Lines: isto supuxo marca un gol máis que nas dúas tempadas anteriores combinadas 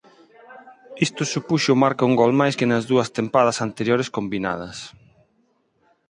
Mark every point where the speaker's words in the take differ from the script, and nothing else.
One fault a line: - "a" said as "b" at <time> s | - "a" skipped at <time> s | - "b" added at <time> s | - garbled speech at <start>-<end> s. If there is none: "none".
none